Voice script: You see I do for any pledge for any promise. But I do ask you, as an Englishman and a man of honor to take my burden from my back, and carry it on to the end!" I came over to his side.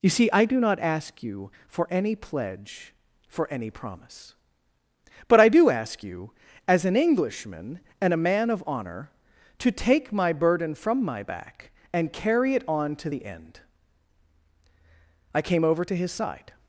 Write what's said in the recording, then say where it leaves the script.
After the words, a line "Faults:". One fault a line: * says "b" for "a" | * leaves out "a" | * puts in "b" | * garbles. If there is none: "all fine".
You see I do not ask you for any pledge for any promise. But I do ask you, as an Englishman and a man of honor to take my burden from my back, and carry it on to the end!" I came over to his side.
Faults:
* puts in "not ask you"